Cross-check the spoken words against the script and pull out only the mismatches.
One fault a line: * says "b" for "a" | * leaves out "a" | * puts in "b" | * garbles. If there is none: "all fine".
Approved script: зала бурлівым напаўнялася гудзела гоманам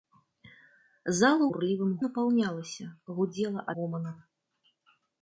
all fine